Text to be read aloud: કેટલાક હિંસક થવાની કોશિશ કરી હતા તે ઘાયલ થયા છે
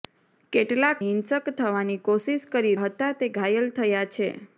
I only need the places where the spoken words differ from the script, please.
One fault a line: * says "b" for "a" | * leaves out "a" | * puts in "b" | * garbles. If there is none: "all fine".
all fine